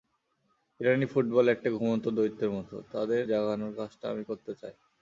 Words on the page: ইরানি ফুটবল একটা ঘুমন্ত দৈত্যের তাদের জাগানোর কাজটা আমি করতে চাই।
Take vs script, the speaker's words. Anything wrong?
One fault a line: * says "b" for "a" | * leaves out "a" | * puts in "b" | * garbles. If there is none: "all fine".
* puts in "মতো"